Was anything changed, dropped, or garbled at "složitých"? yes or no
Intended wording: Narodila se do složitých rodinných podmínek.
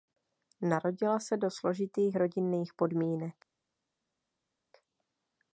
no